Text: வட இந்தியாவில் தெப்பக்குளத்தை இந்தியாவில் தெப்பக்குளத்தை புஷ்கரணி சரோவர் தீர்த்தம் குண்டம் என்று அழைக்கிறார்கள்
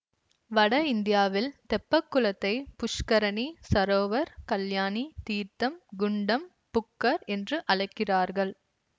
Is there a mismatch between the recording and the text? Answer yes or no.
yes